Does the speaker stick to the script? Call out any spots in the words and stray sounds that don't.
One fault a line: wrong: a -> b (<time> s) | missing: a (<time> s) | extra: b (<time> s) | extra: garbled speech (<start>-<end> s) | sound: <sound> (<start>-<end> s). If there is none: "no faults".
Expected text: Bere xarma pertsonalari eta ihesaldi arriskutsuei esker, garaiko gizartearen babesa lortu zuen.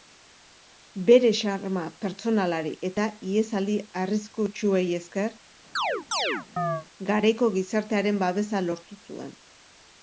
sound: chirp (5.8-6.9 s)